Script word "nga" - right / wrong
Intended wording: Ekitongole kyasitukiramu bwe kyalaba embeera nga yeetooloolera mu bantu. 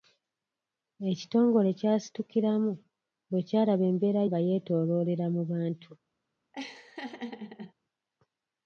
right